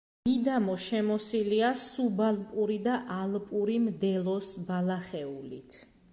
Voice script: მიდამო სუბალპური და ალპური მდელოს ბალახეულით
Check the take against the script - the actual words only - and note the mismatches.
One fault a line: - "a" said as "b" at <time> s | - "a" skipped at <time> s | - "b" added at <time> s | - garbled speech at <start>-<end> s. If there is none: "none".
- "შემოსილია" added at 0.8 s